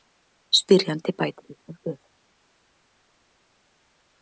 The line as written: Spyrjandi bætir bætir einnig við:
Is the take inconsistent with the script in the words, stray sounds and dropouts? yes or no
yes